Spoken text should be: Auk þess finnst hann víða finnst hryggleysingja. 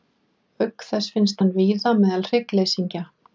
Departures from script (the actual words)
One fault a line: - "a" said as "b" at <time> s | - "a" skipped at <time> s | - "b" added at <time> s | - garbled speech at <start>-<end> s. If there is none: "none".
- "finnst" said as "meðal" at 2.0 s